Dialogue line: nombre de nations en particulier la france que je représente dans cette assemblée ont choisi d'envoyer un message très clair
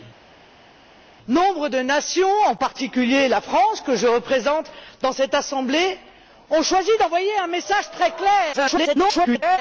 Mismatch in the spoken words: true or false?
true